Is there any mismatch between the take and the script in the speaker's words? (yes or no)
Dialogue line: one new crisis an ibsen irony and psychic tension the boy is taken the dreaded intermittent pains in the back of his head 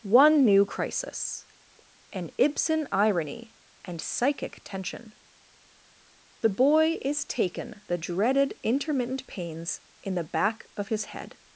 no